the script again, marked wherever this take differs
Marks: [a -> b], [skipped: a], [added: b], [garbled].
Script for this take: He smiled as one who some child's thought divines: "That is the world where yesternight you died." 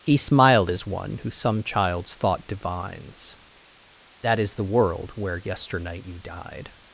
He smiled as one who some child's thought divines: "That is the world where yesternight you died."